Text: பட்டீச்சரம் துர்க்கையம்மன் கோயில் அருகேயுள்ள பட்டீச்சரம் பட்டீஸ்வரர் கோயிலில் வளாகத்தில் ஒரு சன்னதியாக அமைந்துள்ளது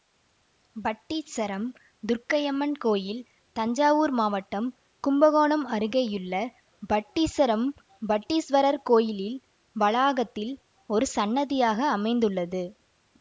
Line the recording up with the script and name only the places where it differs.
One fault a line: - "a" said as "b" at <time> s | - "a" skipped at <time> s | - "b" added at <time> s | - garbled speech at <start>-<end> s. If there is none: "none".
- "தஞ்சாவூர் மாவட்டம் கும்பகோணம்" added at 3.5 s